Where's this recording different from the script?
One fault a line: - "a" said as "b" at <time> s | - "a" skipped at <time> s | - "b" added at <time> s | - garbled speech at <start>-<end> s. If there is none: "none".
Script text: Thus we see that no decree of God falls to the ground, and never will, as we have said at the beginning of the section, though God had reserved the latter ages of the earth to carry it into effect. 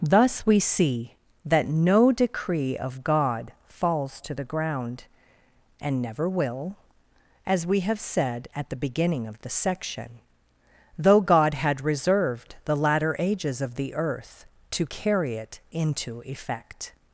none